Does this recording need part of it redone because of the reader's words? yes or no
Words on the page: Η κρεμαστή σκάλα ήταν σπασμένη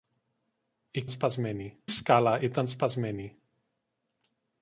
yes